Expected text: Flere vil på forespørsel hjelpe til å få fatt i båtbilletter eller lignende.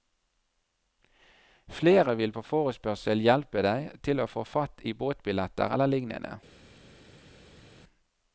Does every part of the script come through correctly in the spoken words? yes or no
no